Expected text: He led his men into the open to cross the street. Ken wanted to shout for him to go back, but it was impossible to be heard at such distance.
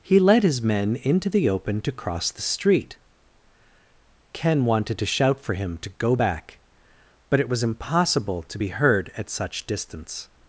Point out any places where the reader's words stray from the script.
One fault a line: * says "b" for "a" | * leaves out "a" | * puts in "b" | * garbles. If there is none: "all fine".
all fine